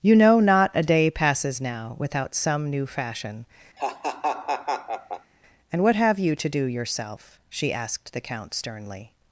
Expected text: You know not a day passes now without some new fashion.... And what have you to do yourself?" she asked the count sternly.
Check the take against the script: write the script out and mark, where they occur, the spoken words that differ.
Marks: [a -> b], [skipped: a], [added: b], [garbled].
You know not a day passes now without some new fashion.... And what have you to do yourself?" she asked the count sternly.